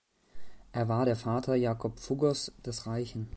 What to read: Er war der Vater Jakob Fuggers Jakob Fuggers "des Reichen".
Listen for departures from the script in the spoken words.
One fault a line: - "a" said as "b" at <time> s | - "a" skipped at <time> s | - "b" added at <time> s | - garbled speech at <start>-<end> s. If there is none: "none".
- "Jakob Fuggers" skipped at 2.5 s